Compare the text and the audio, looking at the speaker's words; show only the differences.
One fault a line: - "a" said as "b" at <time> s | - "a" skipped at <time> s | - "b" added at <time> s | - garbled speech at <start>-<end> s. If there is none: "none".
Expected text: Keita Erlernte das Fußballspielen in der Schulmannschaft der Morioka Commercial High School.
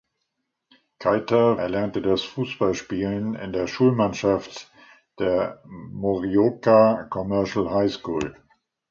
none